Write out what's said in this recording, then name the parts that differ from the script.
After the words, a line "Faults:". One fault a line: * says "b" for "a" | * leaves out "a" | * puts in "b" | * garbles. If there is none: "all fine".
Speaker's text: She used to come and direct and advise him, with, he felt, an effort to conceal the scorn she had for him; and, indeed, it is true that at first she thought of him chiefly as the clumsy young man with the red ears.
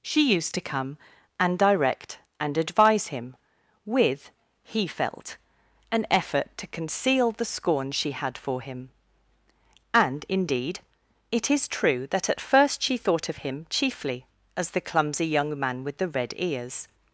She used to come and direct and advise him, with, he felt, an effort to conceal the scorn she had for him; and, indeed, it is true that at first she thought of him chiefly as the clumsy young man with the red ears.
Faults:
all fine